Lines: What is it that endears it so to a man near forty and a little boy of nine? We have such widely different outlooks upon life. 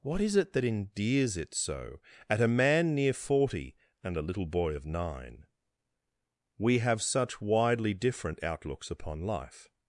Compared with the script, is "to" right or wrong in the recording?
wrong